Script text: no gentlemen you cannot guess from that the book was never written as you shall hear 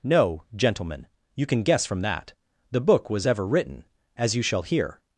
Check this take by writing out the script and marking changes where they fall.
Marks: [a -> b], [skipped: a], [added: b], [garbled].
no gentlemen you [cannot -> can] guess from that the book was [never -> ever] written as you shall hear